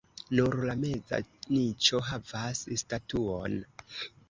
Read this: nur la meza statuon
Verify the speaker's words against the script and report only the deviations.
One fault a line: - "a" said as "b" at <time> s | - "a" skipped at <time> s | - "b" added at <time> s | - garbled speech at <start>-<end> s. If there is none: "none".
- "niĉo havas" added at 1.6 s